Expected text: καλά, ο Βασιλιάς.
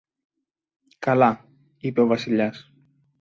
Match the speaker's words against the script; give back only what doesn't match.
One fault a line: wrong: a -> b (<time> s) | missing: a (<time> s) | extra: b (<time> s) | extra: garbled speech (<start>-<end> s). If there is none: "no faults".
extra: είπε (1.8 s)